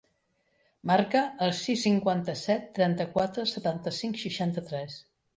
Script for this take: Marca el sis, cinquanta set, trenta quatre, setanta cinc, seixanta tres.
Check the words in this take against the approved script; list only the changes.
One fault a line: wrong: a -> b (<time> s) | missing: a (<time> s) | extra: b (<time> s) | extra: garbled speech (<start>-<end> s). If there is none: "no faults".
no faults